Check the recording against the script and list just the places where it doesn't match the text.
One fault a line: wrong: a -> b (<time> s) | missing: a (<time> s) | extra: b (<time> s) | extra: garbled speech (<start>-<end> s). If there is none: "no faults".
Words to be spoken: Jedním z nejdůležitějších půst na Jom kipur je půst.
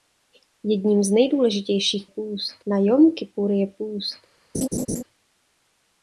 no faults